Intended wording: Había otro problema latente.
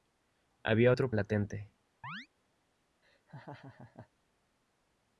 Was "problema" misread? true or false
true